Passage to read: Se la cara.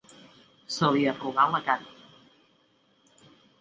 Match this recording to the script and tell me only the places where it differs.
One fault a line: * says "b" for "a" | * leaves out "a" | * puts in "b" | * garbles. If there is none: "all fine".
* puts in "li arrugà"